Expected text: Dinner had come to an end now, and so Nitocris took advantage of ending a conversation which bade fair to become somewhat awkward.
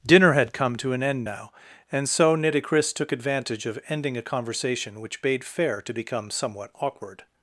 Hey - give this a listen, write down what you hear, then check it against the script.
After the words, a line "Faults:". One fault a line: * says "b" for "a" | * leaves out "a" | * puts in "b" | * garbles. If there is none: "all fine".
Dinner had come to an end now, and so Nitocris took advantage of ending a conversation which bade fair to become somewhat awkward.
Faults:
all fine